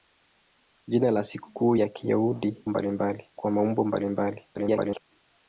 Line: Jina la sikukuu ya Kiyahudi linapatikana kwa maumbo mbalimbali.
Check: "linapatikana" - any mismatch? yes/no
yes